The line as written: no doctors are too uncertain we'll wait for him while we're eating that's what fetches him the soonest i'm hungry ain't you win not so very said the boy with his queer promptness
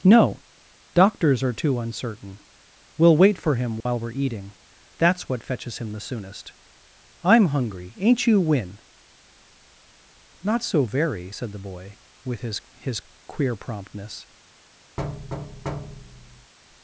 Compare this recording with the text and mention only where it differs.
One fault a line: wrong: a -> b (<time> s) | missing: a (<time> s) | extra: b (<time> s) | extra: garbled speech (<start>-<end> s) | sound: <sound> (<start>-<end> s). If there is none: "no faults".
sound: dropout (3.8-3.9 s)
extra: his (12.8 s)
sound: thud (15.0-16.5 s)